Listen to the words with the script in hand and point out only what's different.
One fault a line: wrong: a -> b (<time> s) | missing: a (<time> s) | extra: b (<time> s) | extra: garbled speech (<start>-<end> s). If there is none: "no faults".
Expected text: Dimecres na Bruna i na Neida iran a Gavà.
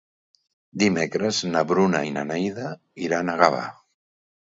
no faults